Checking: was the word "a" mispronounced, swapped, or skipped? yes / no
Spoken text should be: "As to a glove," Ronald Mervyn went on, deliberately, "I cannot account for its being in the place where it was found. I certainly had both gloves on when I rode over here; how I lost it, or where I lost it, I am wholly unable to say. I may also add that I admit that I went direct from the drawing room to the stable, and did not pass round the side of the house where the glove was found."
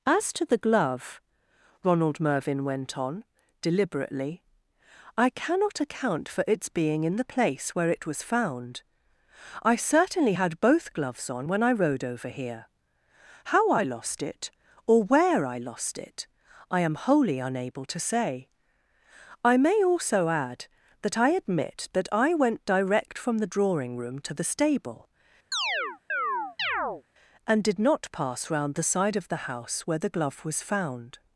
yes